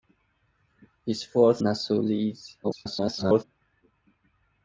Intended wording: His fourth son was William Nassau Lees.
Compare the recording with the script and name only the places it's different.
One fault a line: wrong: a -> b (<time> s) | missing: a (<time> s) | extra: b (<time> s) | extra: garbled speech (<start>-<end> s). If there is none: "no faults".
missing: son was William (1.6 s)
extra: garbled speech (2.6-3.4 s)